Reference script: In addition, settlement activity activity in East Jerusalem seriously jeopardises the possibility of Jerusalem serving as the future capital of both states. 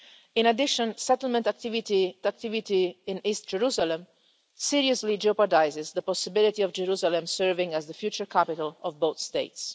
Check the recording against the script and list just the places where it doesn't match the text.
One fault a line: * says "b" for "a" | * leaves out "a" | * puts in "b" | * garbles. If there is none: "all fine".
all fine